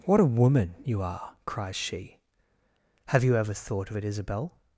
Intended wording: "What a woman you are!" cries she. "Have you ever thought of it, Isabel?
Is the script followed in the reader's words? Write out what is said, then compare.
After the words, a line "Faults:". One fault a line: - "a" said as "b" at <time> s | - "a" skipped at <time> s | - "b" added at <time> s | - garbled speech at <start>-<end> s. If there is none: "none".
"What a woman you are!" cries she. "Have you ever thought of it, Isabel?
Faults:
none